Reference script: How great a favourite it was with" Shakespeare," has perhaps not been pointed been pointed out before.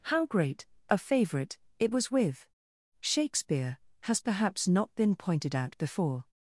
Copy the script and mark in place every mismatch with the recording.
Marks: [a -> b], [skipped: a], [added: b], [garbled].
How great a favourite it was with" Shakespeare," has perhaps not been pointed [skipped: been pointed] out before.